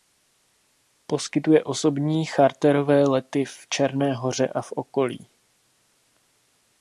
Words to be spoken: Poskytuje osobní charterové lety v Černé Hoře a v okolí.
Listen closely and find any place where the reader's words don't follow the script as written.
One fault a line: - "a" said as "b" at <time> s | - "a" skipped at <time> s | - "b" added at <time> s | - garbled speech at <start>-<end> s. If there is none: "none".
none